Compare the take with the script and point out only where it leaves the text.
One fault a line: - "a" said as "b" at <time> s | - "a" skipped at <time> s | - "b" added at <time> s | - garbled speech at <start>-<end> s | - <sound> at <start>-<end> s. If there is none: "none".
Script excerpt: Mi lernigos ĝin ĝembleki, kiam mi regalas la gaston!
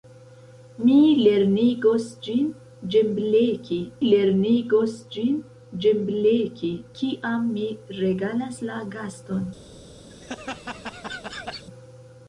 - "lernigos ĝin ĝembleki" added at 4.1 s
- laugh at 10.1-11.7 s